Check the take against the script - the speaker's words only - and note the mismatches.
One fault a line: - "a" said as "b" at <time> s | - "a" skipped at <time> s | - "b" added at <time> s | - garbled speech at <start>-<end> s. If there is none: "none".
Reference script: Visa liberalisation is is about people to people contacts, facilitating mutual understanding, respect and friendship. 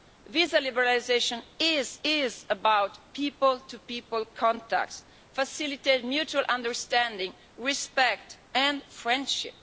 none